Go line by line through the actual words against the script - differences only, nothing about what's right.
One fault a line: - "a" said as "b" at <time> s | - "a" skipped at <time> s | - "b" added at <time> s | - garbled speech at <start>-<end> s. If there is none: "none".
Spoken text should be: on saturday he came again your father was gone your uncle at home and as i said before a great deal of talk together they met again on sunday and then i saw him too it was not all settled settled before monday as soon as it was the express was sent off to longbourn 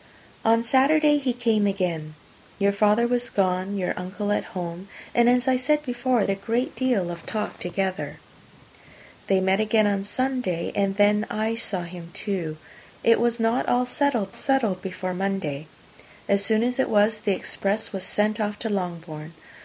none